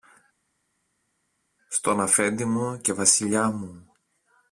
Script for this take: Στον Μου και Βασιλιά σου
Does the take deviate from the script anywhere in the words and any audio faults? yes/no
yes